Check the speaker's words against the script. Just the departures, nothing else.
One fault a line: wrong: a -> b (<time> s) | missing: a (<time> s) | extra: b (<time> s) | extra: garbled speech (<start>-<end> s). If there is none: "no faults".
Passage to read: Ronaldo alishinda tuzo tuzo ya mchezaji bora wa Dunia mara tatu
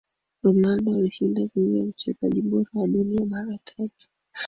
missing: tuzo (1.8 s)